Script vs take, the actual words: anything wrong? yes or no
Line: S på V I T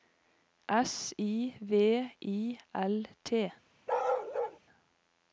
yes